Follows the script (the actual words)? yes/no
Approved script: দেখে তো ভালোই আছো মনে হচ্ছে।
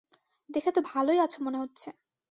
yes